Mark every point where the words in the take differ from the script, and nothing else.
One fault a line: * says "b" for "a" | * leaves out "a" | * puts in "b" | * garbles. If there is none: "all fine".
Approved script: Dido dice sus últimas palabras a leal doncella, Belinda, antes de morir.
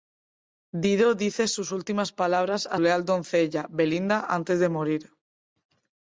all fine